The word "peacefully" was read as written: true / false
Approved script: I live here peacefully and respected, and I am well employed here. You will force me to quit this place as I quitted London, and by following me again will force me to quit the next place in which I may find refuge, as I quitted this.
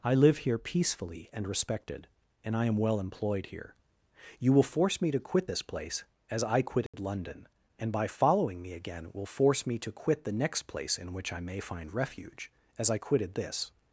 true